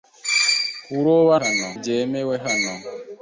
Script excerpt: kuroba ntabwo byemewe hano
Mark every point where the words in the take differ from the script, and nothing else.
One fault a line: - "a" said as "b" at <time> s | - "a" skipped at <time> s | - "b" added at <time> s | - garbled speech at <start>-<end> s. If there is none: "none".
- "ntabwo" said as "hano" at 1.4 s